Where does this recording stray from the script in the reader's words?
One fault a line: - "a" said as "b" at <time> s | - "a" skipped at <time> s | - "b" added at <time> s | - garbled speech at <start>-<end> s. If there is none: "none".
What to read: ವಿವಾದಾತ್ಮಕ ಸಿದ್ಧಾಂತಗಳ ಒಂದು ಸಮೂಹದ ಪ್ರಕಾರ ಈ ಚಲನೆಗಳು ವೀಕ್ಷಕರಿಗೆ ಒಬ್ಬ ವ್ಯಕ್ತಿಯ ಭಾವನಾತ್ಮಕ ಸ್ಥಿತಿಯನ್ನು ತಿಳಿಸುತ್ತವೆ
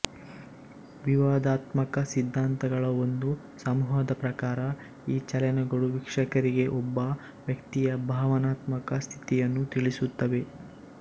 none